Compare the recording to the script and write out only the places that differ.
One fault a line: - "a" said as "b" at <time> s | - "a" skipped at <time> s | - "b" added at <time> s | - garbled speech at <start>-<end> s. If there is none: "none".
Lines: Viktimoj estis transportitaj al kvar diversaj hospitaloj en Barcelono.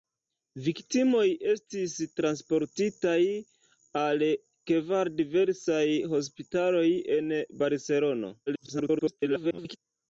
- garbled speech at 8.5-9.8 s